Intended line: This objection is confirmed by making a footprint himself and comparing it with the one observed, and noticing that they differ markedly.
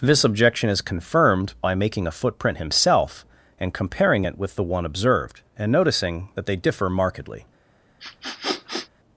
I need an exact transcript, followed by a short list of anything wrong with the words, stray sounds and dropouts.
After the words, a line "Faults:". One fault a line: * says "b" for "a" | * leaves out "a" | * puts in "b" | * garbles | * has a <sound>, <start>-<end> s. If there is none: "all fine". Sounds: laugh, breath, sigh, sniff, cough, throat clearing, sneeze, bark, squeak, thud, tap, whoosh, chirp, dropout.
This objection is confirmed by making a footprint himself and comparing it with the one observed, and noticing that they differ markedly.
Faults:
* has a sniff, 8.0-8.9 s